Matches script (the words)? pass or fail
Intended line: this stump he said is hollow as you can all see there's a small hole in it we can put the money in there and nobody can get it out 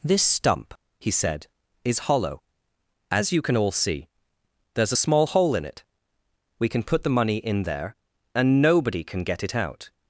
pass